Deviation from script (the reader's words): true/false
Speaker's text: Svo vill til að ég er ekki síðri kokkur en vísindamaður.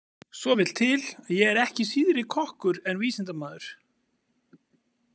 false